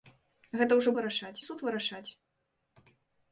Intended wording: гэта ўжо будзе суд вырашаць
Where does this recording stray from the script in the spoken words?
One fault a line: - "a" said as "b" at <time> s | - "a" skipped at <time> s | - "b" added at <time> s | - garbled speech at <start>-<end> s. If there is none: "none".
- "будзе" said as "вырашаць" at 1.0 s